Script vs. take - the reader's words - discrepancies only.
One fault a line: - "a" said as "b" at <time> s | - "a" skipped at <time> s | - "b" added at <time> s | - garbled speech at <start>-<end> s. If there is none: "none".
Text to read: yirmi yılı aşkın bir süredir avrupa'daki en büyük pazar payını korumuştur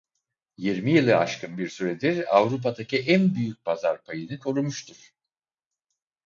none